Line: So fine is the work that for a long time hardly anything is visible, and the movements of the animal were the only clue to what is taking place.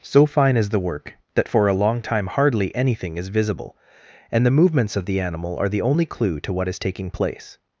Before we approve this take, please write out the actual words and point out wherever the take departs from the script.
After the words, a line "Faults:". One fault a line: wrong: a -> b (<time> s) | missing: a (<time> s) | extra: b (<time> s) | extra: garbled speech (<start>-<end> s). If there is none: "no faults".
So fine is the work that for a long time hardly anything is visible, and the movements of the animal are the only clue to what is taking place.
Faults:
wrong: were -> are (5.6 s)